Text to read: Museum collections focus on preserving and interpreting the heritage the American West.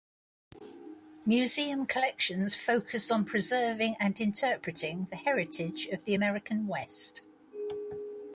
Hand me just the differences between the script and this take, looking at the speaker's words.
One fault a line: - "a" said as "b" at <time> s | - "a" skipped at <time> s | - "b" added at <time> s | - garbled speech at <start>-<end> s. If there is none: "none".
- "of" added at 5.9 s